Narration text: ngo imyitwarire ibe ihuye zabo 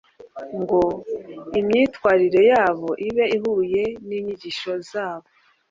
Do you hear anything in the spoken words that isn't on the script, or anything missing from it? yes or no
yes